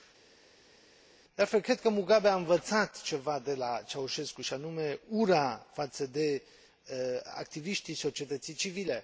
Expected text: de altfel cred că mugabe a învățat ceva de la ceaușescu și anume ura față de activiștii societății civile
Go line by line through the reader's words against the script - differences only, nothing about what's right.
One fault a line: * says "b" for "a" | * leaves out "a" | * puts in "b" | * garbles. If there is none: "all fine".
all fine